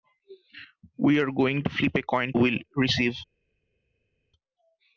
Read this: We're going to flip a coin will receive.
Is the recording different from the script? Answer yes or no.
no